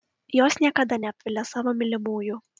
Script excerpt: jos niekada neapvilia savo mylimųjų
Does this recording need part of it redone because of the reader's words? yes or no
no